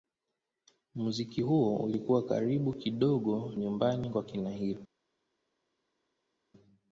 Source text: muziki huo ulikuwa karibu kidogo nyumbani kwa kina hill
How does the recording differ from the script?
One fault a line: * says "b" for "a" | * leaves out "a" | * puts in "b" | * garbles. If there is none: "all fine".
all fine